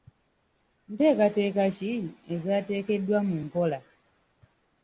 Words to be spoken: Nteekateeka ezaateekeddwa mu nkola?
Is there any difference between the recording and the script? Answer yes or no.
yes